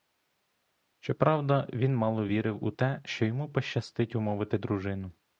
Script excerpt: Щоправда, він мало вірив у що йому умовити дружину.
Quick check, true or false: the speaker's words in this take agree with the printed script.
false